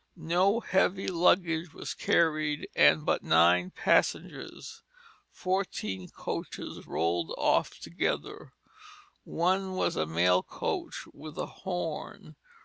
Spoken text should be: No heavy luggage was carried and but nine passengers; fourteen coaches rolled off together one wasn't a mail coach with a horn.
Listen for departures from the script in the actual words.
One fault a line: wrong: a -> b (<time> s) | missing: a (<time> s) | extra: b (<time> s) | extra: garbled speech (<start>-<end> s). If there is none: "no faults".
wrong: wasn't -> was (9.7 s)